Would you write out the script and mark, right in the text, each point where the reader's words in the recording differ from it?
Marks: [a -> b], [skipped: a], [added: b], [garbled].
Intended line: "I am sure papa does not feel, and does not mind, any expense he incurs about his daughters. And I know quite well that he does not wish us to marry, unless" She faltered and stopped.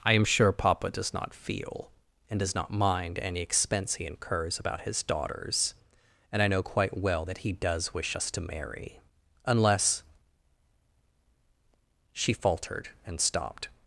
"I am sure papa does not feel, and does not mind, any expense he incurs about his daughters. And I know quite well that he does [skipped: not] wish us to marry, unless" She faltered and stopped.